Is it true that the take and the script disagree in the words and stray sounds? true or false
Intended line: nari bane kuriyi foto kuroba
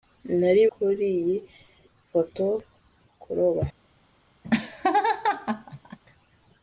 true